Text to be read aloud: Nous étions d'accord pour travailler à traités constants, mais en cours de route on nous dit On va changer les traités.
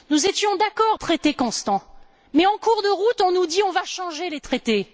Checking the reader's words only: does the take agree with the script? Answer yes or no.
no